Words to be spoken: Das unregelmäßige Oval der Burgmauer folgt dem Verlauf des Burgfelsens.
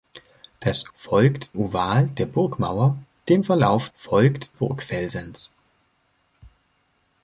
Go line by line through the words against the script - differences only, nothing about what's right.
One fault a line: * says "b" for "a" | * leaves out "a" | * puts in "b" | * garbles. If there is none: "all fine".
* says "folgt" for "unregelmäßige"
* leaves out "folgt"
* says "folgt" for "des"